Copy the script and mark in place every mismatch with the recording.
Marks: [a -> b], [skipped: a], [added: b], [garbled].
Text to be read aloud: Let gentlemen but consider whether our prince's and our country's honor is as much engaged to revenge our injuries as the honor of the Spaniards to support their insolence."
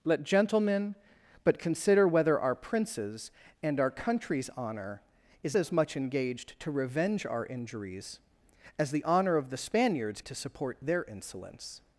Let gentlemen but consider whether our prince's and our country's honor is as much engaged to revenge our injuries as the honor of the Spaniards to support their insolence."